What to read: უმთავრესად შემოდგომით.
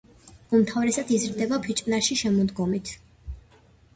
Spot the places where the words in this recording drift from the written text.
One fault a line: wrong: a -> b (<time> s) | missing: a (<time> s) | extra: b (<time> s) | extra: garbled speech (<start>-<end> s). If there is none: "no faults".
extra: იზრდება ფიჭვნარში (1.2 s)